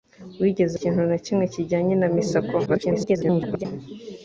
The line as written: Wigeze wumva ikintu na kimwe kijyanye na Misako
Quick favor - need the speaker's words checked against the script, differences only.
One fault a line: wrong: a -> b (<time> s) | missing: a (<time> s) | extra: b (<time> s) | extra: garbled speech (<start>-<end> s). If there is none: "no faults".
missing: wumva (0.8 s)
extra: garbled speech (2.7-3.7 s)